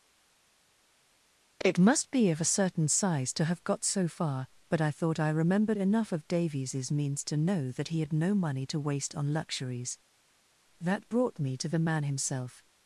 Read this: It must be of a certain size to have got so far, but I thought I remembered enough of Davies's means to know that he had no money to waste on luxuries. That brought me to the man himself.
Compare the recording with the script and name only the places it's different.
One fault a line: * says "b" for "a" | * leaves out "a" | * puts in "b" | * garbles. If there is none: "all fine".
all fine